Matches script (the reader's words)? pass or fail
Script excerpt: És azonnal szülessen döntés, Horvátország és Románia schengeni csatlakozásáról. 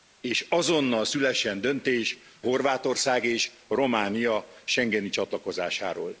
pass